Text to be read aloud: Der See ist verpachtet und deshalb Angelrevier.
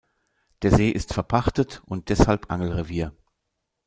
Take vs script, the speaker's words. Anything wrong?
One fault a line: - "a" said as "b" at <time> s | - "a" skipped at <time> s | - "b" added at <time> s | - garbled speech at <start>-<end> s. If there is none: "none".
none